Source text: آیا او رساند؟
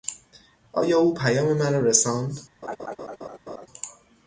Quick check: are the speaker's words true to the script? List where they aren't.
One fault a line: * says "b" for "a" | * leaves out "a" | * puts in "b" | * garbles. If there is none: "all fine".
* puts in "پیام مرا"